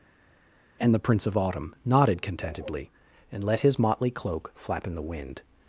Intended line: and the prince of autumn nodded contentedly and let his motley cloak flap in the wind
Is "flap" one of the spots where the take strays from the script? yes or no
no